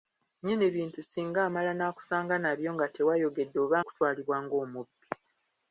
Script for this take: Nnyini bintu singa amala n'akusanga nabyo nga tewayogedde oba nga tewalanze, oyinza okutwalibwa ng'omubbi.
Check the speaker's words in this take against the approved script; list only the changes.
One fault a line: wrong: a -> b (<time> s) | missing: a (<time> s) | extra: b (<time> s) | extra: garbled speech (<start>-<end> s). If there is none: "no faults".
missing: nga tewalanze oyinza (3.8 s)